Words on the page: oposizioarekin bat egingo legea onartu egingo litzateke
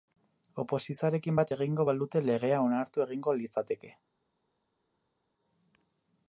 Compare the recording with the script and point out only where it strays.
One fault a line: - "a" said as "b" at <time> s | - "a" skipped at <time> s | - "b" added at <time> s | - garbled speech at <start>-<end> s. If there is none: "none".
- "balute" added at 1.9 s